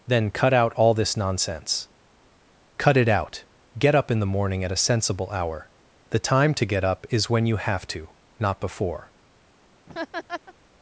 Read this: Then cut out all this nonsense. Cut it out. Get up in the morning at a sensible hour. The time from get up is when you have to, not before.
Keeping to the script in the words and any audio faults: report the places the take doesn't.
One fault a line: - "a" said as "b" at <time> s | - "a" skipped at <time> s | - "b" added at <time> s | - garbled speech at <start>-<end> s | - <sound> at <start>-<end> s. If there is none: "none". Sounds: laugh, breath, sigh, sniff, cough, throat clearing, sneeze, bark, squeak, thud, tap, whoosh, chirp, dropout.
- "from" said as "to" at 6.5 s
- laugh at 9.9-10.5 s